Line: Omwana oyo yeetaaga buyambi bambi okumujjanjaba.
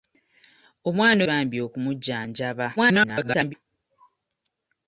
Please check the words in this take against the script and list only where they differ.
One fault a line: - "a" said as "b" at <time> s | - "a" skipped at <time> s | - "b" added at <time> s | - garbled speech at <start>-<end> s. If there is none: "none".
- "oyo yeetaaga buyambi" skipped at 1.2 s
- garbled speech at 2.8-3.5 s